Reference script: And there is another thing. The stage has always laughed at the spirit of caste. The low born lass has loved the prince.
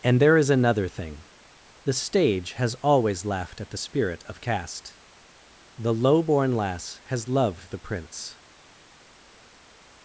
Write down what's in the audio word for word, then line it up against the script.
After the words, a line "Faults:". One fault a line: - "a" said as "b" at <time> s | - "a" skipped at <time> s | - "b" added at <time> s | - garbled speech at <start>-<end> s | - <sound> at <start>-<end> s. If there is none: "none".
And there is another thing. The stage has always laughed at the spirit of caste. The low born lass has loved the prince.
Faults:
none